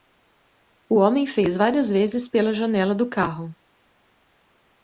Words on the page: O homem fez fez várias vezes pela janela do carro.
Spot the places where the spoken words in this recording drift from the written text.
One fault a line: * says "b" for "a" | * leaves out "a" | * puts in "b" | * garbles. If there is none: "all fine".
* leaves out "fez"